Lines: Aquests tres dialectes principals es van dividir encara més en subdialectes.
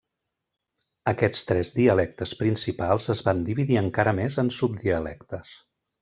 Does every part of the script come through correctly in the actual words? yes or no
yes